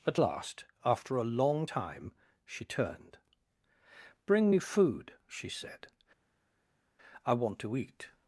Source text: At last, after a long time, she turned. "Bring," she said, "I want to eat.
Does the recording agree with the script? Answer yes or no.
no